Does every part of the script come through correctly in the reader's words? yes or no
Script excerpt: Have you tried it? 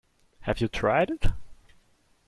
yes